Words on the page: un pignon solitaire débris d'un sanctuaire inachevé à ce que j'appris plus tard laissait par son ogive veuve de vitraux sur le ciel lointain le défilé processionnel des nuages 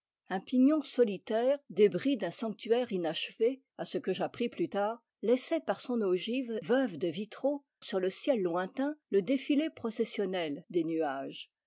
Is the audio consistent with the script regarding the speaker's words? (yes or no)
yes